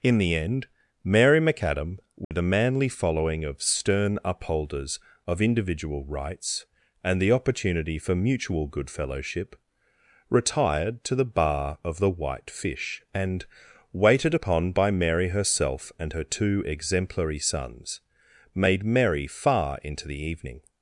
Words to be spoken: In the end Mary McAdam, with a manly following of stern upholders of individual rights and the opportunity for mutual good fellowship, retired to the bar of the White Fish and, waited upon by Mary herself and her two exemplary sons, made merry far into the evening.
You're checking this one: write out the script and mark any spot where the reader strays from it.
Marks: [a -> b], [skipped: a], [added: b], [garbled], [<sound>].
In the end Mary McAdam, with [dropout] a manly following of stern upholders of individual rights and the opportunity for mutual good fellowship, retired to the bar of the White Fish and, waited upon by Mary herself and her two exemplary sons, made merry far into the evening.